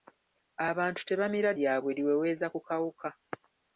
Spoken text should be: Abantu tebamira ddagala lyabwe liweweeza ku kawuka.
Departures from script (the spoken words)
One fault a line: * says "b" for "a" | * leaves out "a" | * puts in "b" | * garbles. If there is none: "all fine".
* leaves out "ddagala"